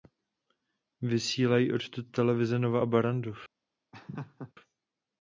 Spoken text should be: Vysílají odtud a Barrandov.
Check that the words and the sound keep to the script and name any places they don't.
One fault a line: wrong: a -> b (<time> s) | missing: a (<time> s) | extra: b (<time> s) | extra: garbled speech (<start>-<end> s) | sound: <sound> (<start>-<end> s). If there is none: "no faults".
extra: televize Nova (2.1 s)
sound: laugh (3.9-4.5 s)